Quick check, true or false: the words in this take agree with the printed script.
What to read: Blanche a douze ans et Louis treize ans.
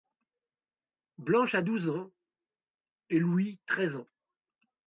true